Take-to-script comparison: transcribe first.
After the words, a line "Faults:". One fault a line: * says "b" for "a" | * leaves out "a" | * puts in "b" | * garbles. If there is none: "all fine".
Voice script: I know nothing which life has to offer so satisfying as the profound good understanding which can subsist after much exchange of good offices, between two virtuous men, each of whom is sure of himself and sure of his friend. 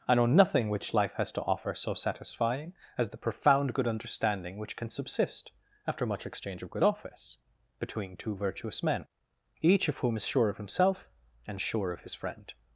I know nothing which life has to offer so satisfying as the profound good understanding which can subsist after much exchange of good office, between two virtuous men, each of whom is sure of himself and sure of his friend.
Faults:
* says "office" for "offices"